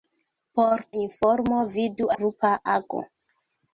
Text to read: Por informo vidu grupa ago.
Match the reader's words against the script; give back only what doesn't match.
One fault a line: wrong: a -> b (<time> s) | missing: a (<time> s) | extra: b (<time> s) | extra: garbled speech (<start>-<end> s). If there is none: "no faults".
no faults